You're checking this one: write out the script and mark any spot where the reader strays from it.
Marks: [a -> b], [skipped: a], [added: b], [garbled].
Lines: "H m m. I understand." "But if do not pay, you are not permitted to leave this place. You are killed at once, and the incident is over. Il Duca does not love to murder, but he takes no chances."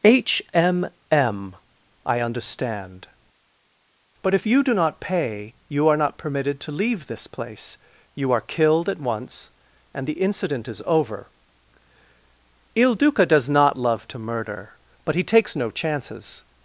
"H m m. I understand." "But if [added: you] do not pay, you are not permitted to leave this place. You are killed at once, and the incident is over. Il Duca does not love to murder, but he takes no chances."